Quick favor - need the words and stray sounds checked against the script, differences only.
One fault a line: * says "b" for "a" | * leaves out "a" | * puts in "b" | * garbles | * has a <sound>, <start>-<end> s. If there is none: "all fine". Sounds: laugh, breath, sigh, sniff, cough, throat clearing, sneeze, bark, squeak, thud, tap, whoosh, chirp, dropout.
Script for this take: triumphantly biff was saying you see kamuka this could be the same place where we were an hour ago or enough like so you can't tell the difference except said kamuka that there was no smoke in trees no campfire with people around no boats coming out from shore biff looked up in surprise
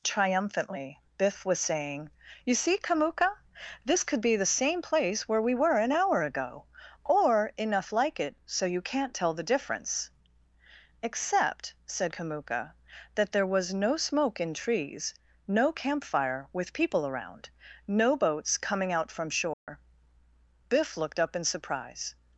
* puts in "it"
* has a dropout, 19.5-19.7 s